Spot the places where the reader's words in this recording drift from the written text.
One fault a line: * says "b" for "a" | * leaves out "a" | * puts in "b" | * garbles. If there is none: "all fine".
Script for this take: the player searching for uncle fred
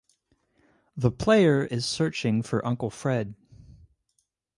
* puts in "is"